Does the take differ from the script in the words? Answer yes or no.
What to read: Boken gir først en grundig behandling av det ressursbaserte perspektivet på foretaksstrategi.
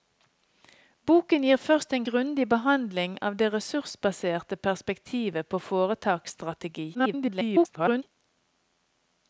yes